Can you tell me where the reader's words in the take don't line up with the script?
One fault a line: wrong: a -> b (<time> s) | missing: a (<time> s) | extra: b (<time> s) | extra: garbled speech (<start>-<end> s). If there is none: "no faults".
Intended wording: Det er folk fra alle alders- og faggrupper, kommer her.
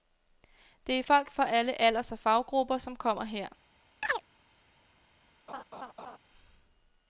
extra: som (2.8 s)